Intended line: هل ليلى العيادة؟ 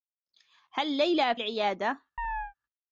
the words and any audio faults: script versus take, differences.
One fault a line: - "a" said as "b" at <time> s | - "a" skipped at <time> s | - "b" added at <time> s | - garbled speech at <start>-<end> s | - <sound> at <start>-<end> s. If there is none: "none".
- chirp at 2.2-2.5 s